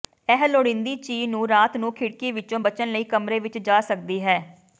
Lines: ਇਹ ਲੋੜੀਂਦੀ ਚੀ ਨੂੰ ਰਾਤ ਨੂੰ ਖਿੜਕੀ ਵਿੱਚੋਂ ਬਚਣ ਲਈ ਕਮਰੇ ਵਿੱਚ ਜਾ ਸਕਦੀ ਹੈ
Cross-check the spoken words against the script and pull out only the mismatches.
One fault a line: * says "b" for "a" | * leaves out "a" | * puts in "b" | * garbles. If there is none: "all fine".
all fine